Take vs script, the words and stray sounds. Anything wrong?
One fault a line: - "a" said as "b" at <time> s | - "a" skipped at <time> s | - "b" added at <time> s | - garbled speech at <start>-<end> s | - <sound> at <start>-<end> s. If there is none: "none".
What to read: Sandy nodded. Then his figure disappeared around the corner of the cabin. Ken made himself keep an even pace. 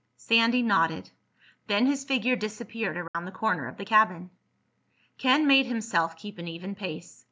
- dropout at 3.1-3.1 s